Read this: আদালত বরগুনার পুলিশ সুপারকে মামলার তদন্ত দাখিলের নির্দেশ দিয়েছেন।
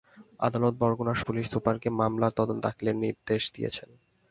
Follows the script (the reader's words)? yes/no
yes